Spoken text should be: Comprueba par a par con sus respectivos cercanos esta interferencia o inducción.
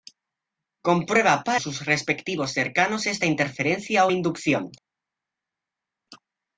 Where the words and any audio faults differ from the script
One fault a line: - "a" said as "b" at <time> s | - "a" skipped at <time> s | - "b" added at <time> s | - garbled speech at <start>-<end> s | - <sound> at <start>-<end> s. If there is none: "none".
- "a par con" skipped at 1.6 s